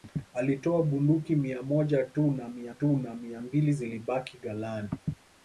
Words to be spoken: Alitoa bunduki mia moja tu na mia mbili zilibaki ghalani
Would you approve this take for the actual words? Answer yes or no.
no